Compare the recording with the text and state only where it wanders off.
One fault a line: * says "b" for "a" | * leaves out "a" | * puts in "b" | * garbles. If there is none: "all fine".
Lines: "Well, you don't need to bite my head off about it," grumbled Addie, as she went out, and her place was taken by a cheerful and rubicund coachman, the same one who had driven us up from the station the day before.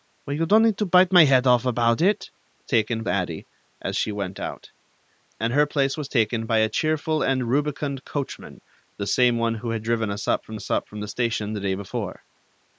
* says "taken" for "grumbled"
* puts in "us up from"